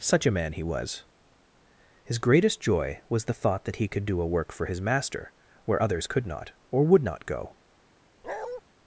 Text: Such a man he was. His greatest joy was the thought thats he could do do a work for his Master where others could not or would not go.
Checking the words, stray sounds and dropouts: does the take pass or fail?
fail